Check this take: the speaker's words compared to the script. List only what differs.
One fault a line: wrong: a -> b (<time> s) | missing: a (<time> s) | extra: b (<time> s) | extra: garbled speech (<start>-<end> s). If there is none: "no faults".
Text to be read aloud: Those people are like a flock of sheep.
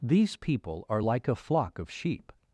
wrong: Those -> These (0.0 s)